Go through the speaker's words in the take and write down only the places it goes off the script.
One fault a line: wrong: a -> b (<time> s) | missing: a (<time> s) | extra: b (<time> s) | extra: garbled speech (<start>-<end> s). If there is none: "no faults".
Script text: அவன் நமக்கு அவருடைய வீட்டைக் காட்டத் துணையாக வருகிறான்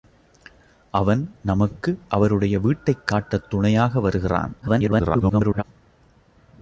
extra: garbled speech (4.6-5.6 s)